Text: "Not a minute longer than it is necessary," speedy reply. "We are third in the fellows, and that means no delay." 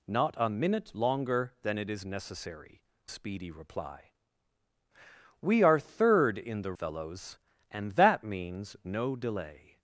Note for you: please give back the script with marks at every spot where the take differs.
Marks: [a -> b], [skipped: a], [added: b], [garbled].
"Not a minute longer than it is necessary," speedy reply. "We are third in the fellows, and that means no delay."